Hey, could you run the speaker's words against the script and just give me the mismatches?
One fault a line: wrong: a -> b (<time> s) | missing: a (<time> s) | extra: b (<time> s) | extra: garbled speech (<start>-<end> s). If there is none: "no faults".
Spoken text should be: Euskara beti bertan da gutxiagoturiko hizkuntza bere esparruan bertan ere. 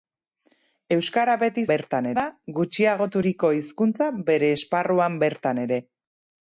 no faults